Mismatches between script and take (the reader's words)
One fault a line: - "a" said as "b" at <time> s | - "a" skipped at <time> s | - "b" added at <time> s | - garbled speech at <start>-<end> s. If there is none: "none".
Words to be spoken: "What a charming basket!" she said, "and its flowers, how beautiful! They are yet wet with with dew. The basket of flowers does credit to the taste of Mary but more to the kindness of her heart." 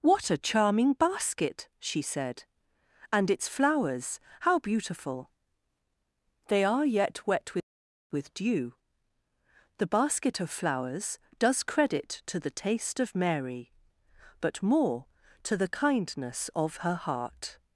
none